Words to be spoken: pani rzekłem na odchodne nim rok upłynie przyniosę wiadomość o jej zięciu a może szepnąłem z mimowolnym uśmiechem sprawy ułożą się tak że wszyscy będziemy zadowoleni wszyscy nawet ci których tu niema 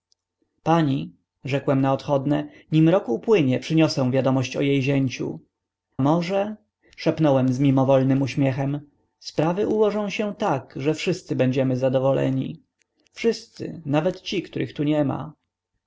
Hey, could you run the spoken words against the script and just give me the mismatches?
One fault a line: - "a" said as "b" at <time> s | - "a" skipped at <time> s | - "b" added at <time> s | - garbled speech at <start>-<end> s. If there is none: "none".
- "a" skipped at 5.4 s